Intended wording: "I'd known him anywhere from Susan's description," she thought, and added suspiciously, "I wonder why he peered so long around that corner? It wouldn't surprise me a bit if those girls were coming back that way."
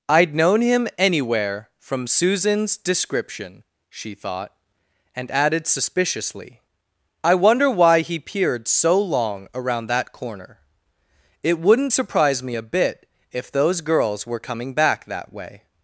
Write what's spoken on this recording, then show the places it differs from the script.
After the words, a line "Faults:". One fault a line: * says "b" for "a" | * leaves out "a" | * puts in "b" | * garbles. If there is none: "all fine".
"I'd known him anywhere from Susan's description," she thought, and added suspiciously, "I wonder why he peered so long around that corner? It wouldn't surprise me a bit if those girls were coming back that way."
Faults:
all fine